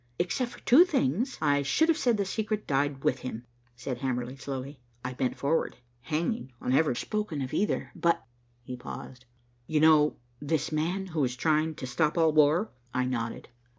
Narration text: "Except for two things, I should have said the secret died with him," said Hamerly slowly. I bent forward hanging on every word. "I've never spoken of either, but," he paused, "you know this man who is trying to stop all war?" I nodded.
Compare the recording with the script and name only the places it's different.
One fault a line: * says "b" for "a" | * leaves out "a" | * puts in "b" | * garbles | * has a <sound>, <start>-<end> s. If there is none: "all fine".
* leaves out "word I've never"